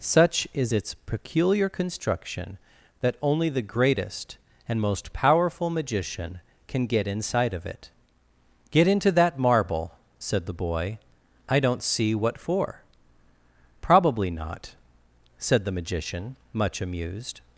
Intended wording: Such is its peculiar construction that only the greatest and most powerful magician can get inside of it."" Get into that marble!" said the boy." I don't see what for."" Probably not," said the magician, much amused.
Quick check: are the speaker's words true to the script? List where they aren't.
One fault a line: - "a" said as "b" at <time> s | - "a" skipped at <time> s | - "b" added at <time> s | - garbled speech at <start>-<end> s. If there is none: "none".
none